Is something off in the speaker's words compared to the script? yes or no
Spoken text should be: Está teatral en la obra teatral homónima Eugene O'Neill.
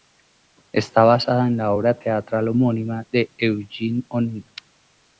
yes